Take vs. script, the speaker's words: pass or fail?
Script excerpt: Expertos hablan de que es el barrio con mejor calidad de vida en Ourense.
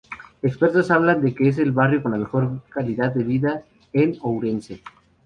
pass